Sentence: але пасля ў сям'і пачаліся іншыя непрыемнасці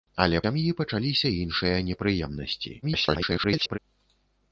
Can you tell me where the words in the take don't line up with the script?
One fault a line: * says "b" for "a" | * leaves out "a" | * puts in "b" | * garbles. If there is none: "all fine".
* leaves out "пасля ў"
* garbles